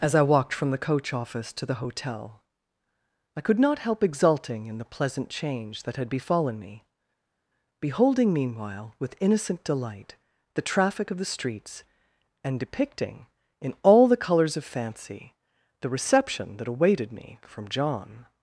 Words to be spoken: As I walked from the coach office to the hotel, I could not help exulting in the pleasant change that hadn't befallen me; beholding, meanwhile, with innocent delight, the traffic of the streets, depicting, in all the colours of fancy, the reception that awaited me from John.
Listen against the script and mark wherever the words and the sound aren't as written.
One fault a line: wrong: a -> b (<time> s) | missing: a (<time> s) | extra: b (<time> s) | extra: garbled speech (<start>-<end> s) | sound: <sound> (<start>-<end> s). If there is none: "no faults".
wrong: hadn't -> had (6.0 s)
extra: and (12.4 s)